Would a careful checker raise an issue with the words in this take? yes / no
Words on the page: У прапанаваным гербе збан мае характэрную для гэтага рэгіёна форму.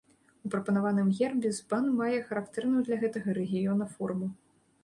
no